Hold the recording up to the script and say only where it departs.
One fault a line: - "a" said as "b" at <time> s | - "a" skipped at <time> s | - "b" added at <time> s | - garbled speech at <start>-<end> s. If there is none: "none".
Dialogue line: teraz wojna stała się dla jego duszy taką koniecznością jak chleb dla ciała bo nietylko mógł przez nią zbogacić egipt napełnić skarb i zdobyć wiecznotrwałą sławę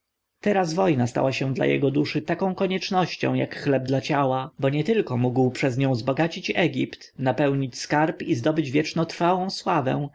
none